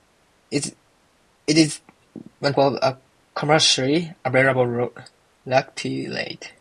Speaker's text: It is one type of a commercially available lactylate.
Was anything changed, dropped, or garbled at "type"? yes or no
yes